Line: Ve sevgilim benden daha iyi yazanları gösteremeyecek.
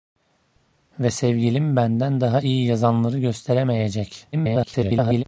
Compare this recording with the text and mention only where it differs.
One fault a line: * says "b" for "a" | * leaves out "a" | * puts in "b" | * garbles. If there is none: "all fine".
* garbles